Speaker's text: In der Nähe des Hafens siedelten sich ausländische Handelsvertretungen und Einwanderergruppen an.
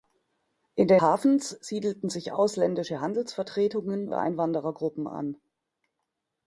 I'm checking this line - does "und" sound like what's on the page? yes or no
no